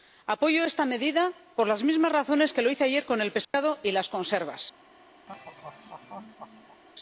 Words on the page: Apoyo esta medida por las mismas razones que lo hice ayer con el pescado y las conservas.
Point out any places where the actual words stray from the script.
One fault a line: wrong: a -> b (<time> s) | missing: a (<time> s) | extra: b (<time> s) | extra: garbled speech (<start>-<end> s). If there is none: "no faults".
no faults